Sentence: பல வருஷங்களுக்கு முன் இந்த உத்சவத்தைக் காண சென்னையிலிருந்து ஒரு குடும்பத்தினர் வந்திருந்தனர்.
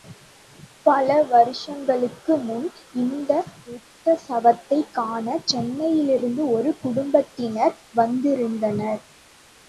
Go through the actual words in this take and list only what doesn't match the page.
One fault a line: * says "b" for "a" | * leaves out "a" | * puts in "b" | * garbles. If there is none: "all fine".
all fine